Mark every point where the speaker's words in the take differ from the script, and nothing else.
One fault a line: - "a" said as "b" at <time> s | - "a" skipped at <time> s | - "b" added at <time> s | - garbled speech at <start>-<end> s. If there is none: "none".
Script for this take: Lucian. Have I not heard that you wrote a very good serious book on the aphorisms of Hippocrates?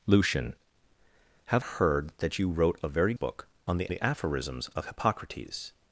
- "I not" skipped at 1.6 s
- "good serious" skipped at 3.1 s
- "the" added at 3.9 s